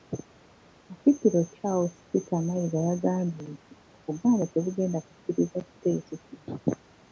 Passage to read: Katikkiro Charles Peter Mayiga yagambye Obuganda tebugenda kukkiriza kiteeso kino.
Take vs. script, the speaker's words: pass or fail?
fail